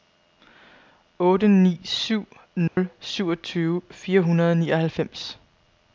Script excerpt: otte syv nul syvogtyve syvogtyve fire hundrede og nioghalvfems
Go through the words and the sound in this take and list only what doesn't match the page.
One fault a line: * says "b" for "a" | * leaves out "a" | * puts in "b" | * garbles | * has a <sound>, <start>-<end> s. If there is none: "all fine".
* puts in "ni"
* has a dropout, 2.7-2.8 s
* leaves out "syvogtyve"